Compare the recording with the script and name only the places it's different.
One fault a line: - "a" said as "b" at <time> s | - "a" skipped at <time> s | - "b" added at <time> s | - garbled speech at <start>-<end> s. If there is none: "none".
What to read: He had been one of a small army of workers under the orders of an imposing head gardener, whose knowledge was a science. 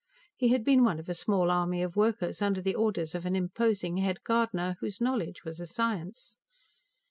none